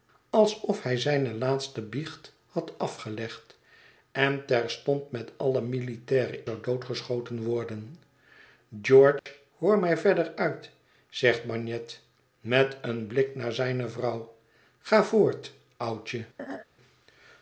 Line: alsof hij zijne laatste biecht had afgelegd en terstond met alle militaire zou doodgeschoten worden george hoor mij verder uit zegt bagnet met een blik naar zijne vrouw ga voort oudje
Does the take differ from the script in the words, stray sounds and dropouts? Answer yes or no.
yes